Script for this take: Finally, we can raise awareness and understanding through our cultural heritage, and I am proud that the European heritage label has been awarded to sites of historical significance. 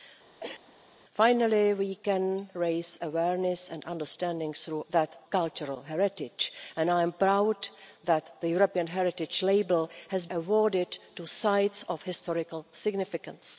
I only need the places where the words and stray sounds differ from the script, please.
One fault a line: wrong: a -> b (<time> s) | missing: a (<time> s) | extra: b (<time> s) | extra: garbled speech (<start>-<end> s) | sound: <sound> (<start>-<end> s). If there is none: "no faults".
sound: cough (0.4-0.7 s)
wrong: our -> that (4.9 s)
missing: been (10.2 s)